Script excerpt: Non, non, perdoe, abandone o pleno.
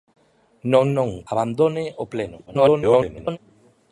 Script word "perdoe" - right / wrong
wrong